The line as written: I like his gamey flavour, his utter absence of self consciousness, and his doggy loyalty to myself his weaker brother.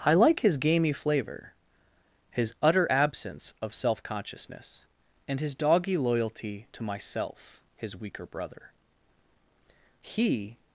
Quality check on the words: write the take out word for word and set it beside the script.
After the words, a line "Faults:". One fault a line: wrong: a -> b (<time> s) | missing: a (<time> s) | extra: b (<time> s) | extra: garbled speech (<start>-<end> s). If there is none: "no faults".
I like his gamey flavour, his utter absence of self consciousness, and his doggy loyalty to myself his weaker brother. He
Faults:
extra: He (10.0 s)